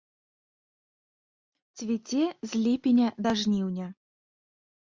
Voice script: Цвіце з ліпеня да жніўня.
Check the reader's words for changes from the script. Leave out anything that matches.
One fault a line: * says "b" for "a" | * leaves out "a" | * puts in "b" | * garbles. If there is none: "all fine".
all fine